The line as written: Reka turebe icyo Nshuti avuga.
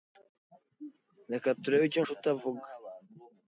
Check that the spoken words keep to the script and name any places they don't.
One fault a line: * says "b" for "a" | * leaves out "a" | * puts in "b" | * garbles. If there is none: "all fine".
all fine